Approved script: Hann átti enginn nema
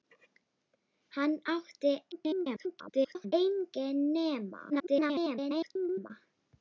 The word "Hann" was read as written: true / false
true